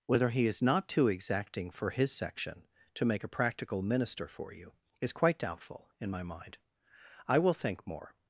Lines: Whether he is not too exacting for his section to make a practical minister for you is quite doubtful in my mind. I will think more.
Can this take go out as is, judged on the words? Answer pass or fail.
pass